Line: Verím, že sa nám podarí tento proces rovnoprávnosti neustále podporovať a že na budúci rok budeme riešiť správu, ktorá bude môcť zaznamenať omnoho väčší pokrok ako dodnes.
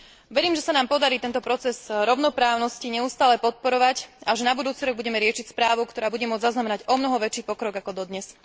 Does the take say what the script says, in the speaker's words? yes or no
yes